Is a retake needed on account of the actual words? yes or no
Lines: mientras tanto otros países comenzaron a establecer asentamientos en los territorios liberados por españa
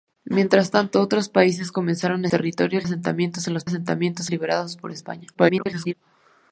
yes